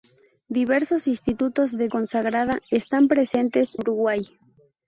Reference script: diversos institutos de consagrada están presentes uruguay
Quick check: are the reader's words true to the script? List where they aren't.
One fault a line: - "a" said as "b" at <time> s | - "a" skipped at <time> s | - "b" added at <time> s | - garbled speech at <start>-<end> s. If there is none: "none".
none